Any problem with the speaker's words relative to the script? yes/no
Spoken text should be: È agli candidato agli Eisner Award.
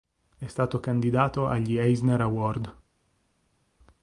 yes